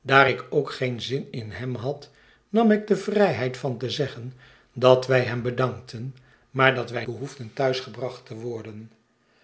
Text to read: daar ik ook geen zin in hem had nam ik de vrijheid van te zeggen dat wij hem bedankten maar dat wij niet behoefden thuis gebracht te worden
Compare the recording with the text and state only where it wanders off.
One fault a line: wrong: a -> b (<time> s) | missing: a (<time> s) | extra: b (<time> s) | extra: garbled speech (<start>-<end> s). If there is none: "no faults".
missing: niet (7.0 s)